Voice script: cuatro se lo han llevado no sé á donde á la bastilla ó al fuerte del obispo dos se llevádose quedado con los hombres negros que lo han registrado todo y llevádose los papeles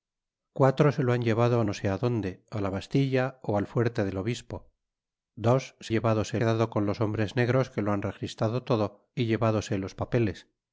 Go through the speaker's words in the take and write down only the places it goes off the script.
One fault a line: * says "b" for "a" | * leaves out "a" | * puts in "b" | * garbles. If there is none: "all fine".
all fine